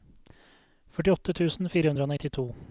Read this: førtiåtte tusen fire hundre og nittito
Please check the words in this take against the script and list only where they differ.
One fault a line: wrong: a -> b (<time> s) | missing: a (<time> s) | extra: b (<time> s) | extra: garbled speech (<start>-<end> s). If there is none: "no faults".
no faults